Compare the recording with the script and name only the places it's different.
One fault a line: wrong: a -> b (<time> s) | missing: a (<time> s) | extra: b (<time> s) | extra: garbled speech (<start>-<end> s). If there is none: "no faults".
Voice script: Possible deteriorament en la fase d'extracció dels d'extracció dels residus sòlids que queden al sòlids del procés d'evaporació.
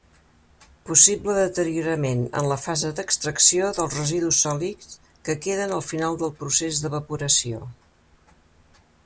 missing: d'extracció dels (4.0 s)
wrong: sòlids -> final (5.9 s)